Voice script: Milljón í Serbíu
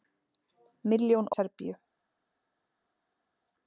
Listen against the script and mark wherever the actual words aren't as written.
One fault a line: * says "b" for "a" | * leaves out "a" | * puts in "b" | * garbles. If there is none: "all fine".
all fine